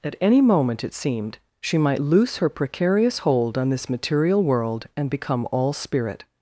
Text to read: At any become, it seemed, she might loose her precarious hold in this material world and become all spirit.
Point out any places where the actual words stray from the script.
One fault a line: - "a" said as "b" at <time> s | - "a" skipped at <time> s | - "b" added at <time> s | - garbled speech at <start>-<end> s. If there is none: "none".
- "become" said as "moment" at 0.4 s
- "in" said as "on" at 3.6 s